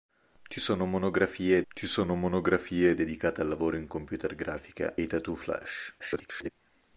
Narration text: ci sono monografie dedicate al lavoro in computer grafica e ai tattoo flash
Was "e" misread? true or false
true